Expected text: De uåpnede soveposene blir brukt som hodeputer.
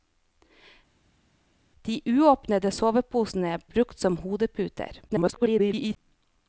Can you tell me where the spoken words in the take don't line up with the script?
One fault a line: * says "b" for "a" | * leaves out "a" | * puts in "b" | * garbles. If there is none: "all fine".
* leaves out "blir"
* garbles